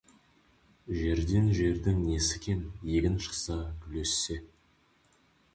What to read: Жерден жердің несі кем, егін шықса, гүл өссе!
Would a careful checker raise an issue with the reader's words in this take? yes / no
no